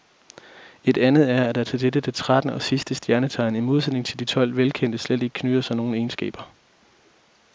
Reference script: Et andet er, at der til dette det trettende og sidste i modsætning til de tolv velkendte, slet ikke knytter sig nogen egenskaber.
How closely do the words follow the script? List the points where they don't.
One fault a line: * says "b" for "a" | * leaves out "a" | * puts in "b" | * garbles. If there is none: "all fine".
* puts in "stjernetegn"